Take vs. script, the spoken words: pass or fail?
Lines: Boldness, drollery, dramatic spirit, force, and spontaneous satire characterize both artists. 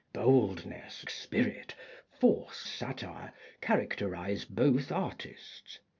fail